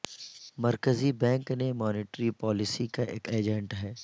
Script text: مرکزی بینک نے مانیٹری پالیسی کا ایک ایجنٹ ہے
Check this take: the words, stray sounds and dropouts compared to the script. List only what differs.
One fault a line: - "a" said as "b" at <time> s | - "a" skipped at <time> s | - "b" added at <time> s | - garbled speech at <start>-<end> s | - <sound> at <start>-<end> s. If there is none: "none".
none